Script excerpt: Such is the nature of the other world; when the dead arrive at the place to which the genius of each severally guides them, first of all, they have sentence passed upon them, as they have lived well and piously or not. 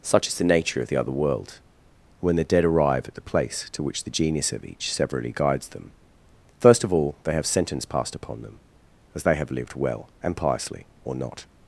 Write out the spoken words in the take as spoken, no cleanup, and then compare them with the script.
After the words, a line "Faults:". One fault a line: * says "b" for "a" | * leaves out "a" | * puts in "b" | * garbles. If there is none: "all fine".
Such is the nature of the other world; when the dead arrive at the place to which the genius of each severally guides them, first of all, they have sentence passed upon them, as they have lived well and piously or not.
Faults:
all fine